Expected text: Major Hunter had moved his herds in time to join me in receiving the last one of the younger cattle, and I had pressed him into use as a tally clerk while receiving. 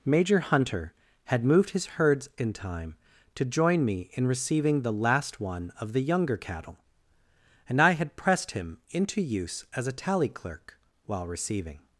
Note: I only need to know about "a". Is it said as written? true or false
true